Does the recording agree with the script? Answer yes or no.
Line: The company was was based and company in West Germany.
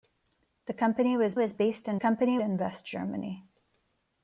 yes